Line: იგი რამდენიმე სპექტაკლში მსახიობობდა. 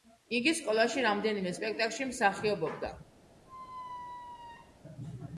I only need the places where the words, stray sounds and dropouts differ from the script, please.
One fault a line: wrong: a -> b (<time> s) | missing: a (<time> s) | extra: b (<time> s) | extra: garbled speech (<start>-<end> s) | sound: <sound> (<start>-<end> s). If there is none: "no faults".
extra: სკოლაში (0.6 s)
sound: squeak (3.5-4.8 s)